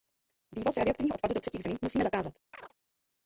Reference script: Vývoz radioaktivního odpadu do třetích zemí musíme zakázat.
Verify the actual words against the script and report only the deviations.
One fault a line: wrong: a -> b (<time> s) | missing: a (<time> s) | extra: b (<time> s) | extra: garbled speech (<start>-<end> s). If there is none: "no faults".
no faults